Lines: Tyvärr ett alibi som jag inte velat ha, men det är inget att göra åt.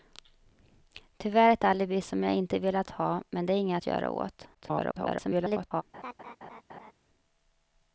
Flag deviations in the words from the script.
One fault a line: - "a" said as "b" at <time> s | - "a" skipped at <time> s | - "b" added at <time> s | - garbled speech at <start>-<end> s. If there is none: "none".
- garbled speech at 4.5-5.8 s